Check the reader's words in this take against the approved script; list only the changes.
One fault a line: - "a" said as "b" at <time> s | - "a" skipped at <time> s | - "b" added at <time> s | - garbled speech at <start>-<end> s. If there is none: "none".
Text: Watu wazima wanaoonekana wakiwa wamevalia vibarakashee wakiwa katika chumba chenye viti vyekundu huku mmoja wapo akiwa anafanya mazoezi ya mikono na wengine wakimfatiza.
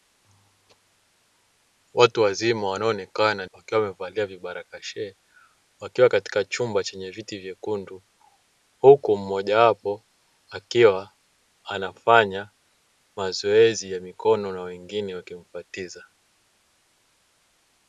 none